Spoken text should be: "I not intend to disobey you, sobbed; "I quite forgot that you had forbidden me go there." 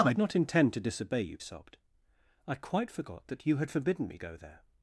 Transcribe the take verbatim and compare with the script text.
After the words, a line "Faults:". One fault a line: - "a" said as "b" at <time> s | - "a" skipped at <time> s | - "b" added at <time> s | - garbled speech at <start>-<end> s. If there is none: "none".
"I not intend to disobey you, sobbed; "I quite forgot that you had forbidden me go there."
Faults:
none